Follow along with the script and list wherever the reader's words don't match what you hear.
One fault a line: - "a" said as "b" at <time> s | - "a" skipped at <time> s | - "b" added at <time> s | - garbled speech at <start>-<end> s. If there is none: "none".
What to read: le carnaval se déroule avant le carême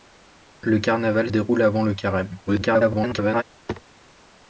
- "se" skipped at 1.3 s
- garbled speech at 2.5-3.4 s